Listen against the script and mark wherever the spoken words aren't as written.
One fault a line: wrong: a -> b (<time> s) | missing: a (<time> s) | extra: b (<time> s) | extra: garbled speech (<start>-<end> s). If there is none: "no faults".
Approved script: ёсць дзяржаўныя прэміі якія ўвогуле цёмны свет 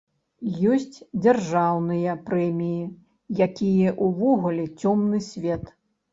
no faults